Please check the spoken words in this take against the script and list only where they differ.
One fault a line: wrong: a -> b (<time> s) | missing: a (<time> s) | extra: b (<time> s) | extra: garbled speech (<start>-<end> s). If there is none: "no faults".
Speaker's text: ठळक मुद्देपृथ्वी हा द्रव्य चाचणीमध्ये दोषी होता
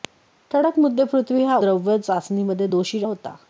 no faults